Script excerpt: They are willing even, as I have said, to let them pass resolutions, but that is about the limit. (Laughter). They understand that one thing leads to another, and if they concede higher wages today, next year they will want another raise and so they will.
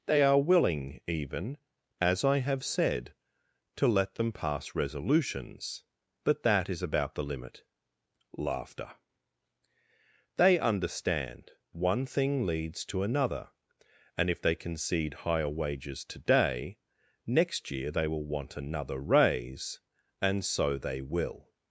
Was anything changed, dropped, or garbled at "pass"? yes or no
no